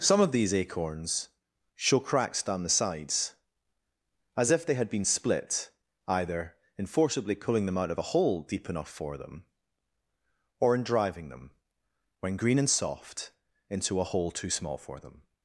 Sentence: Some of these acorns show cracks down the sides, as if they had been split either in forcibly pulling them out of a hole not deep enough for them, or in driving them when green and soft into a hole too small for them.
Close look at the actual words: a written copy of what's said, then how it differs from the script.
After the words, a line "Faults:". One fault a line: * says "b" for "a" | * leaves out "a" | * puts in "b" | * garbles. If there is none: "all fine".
Some of these acorns show cracks down the sides, as if they had been split either in forcibly pulling them out of a hole deep enough for them, or in driving them when green and soft into a hole too small for them.
Faults:
* leaves out "not"